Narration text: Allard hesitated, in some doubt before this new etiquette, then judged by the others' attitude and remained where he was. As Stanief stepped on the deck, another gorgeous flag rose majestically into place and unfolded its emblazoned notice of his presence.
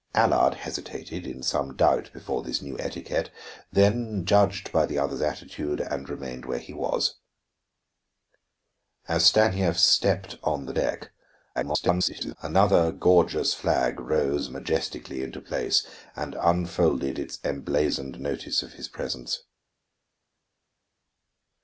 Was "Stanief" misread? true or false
false